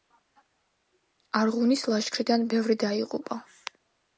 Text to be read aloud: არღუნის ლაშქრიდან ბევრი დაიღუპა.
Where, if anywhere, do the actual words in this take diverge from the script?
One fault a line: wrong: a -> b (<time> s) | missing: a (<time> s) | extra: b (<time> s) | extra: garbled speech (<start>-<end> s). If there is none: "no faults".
no faults